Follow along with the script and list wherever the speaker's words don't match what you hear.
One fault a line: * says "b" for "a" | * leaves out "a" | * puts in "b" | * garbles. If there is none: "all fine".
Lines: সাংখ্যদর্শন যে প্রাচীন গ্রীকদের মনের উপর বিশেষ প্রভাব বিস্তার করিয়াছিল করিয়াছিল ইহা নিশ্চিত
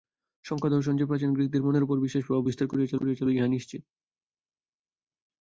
all fine